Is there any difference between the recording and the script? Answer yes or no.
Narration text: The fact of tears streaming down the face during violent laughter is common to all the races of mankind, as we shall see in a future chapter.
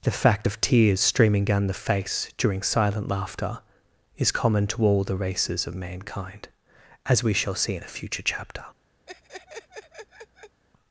yes